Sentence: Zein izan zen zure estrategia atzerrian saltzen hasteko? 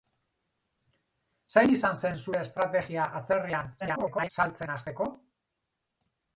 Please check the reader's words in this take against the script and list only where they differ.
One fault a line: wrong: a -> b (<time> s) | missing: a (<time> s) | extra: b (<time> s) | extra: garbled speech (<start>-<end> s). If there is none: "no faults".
extra: garbled speech (3.8-4.3 s)